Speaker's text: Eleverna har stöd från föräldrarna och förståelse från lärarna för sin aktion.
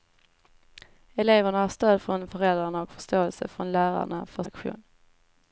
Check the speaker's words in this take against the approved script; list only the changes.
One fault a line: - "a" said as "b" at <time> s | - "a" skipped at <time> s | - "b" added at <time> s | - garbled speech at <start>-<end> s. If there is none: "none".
- "sin" skipped at 4.4 s